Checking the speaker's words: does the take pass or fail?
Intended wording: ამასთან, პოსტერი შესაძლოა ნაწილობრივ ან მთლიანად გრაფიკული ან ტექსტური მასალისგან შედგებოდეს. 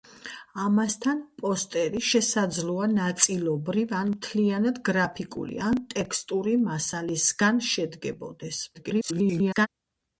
fail